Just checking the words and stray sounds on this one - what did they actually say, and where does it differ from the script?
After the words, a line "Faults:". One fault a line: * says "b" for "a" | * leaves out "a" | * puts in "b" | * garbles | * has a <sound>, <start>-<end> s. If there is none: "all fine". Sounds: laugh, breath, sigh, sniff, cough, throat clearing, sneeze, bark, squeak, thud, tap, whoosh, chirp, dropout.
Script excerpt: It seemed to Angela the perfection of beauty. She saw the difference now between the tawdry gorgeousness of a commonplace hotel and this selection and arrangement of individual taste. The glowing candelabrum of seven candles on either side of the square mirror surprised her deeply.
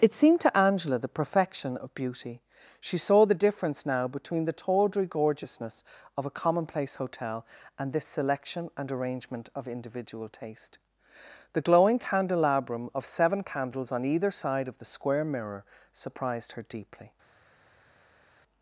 It seemed to Angela the perfection of beauty. She saw the difference now between the tawdry gorgeousness of a commonplace hotel and this selection and arrangement of individual taste. The glowing candelabrum of seven candles on either side of the square mirror surprised her deeply.
Faults:
all fine